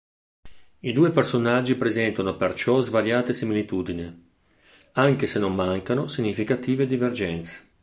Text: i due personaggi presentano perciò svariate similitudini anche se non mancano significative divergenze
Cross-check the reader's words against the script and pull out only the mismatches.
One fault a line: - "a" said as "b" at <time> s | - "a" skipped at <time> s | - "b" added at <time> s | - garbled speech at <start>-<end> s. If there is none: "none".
none